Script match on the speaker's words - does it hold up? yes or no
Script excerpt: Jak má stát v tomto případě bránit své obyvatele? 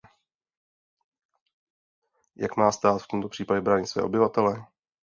yes